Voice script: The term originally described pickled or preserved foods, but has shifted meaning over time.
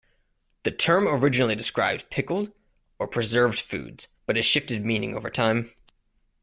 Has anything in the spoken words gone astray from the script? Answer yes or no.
no